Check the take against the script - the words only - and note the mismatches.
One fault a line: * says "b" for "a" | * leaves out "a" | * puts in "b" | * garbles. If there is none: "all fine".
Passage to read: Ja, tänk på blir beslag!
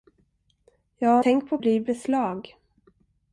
all fine